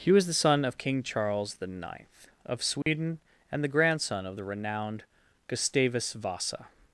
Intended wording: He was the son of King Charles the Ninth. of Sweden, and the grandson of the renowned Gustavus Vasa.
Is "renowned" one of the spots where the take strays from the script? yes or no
no